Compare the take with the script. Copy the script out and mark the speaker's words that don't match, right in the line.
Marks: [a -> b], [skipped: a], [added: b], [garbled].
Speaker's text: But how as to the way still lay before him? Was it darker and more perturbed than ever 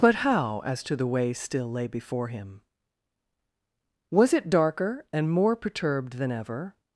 But how as to the way still lay before him? Was it darker and more perturbed than ever